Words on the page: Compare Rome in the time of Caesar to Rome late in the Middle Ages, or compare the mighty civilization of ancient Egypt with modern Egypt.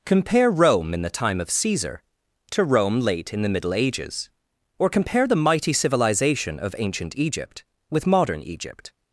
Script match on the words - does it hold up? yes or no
yes